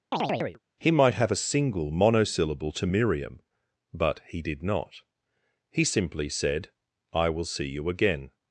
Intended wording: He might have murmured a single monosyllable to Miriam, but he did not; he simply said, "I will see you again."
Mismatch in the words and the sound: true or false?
true